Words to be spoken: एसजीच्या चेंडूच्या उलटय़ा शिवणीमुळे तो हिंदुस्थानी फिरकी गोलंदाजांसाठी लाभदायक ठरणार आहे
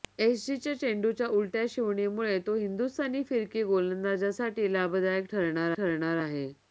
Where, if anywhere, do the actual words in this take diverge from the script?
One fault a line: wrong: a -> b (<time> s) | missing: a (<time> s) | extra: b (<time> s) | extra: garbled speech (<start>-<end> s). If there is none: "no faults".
extra: ठरणार (5.8 s)